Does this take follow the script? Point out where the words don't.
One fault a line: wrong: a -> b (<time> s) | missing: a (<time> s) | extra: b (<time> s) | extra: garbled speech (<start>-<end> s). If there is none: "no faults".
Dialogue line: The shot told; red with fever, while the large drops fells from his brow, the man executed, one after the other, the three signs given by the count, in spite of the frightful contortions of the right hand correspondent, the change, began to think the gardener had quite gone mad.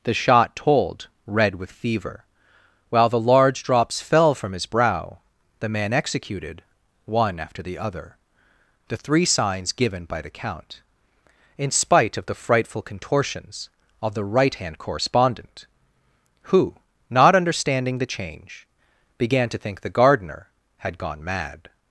wrong: fells -> fell (4.0 s)
extra: who not understanding (16.4 s)
missing: quite (21.0 s)